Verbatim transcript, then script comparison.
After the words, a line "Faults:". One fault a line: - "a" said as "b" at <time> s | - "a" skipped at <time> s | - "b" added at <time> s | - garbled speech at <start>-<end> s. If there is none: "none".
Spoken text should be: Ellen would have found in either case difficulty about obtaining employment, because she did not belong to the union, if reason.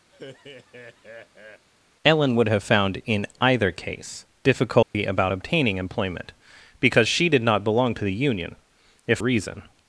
Ellen would have found in either case difficulty about obtaining employment, because she did not belong to the union, if reason.
Faults:
none